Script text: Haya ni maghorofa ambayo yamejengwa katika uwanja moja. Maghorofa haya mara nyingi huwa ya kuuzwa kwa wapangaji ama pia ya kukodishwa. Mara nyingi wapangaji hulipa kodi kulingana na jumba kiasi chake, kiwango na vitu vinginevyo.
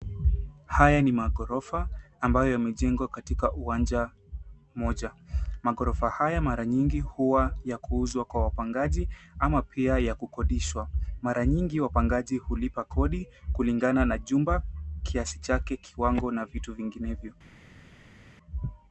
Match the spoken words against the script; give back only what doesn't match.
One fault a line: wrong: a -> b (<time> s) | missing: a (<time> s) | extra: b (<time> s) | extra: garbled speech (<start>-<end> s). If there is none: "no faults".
no faults